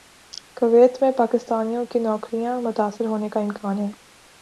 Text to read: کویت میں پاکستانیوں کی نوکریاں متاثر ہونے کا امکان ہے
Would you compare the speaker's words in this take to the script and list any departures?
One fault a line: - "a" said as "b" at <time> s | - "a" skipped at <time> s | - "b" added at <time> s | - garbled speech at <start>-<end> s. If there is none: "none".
none